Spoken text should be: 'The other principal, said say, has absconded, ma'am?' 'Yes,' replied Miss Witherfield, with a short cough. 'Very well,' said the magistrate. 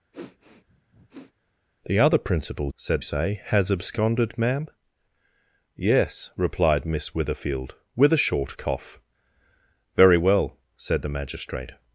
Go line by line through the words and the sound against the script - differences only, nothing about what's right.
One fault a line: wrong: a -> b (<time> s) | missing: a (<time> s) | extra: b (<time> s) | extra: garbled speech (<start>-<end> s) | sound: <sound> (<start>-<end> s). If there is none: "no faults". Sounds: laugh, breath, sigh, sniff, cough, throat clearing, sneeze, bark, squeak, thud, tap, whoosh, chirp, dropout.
sound: sniff (0.1-1.3 s)